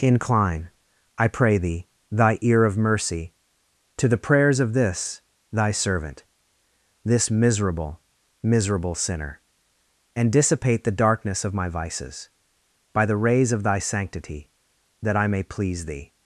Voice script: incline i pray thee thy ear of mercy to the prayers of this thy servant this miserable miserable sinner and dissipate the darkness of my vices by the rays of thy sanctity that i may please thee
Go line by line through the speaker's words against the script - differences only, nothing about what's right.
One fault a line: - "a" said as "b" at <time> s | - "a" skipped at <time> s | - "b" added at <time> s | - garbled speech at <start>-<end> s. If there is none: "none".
none